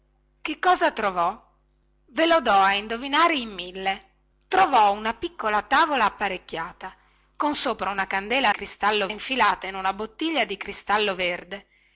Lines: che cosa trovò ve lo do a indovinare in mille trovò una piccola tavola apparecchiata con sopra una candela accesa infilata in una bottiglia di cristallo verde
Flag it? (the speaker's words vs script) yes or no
yes